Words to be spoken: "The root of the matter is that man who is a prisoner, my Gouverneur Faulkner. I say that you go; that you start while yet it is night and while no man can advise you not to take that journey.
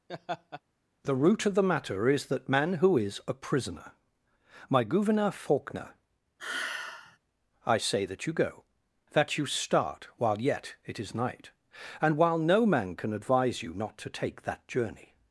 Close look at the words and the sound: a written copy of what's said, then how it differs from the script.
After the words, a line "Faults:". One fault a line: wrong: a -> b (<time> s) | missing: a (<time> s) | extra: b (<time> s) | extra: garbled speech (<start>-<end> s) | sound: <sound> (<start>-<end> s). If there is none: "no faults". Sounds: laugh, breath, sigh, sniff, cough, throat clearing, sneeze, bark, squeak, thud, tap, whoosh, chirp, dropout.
"The root of the matter is that man who is a prisoner, my Gouverneur Faulkner. I say that you go; that you start while yet it is night and while no man can advise you not to take that journey.
Faults:
sound: laugh (0.1-0.6 s)
sound: sigh (6.4-7.2 s)